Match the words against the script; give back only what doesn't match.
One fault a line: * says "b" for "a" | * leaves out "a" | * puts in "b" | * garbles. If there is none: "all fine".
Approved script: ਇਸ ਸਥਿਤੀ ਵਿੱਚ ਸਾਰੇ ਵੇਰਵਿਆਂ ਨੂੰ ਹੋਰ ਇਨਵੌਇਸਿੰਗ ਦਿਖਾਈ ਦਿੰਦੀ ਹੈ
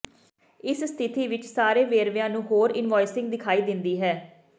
all fine